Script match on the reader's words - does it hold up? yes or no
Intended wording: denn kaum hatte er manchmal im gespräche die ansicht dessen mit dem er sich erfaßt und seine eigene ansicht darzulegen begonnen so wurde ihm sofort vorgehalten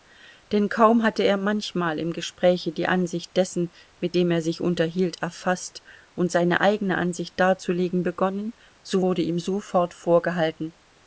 no